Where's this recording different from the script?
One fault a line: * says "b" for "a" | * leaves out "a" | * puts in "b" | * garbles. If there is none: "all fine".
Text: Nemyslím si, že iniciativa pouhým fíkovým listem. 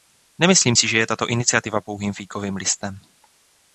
* puts in "je tato"